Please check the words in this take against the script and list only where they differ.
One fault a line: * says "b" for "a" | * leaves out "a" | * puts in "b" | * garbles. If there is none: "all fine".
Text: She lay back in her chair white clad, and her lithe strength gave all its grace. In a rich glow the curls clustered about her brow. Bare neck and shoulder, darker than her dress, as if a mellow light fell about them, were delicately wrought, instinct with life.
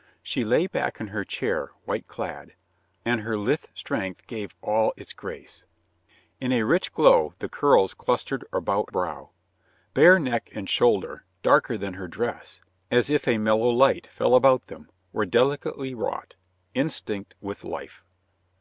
* leaves out "her"